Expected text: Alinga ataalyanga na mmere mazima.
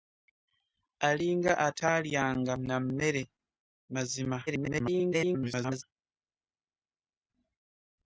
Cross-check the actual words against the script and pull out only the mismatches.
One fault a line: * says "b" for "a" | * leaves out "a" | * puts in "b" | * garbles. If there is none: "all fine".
* garbles